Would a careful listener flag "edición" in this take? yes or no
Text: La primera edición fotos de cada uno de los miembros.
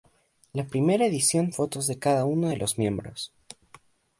no